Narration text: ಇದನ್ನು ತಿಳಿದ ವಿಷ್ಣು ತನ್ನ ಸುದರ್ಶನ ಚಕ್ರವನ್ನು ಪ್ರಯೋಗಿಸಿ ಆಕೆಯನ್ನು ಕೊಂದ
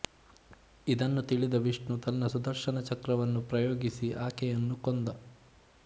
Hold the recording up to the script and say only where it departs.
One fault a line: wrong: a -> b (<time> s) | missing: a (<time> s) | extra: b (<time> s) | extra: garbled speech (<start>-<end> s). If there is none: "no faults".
no faults